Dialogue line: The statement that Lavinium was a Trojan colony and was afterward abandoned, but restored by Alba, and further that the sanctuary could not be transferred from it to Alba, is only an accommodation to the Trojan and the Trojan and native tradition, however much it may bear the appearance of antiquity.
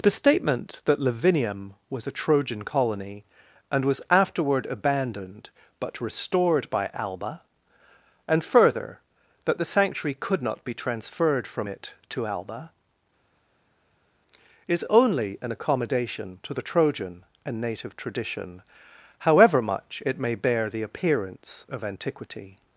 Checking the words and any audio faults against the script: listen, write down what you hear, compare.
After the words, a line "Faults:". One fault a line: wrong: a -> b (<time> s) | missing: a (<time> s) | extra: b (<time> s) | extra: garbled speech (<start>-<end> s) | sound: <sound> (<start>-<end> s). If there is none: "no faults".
The statement that Lavinium was a Trojan colony and was afterward abandoned, but restored by Alba, and further that the sanctuary could not be transferred from it to Alba, is only an accommodation to the Trojan and native tradition, however much it may bear the appearance of antiquity.
Faults:
missing: the Trojan and (17.6 s)